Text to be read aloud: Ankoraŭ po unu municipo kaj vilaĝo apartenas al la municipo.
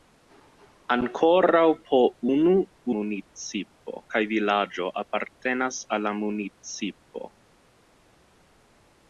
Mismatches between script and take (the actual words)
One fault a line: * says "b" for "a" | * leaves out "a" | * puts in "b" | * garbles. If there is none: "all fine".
all fine